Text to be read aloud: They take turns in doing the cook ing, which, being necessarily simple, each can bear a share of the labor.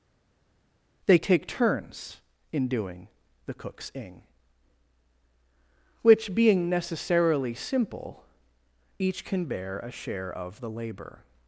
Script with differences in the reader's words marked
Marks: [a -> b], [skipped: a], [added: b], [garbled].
They take turns in doing the [cook -> cooks] ing, which, being necessarily simple, each can bear a share of the labor.